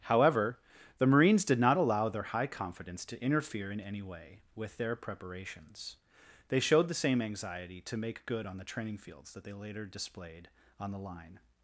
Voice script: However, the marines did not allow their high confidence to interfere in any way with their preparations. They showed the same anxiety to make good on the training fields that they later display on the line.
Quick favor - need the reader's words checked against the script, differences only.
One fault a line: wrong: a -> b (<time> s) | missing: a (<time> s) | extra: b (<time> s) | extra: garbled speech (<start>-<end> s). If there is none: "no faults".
wrong: display -> displayed (9.9 s)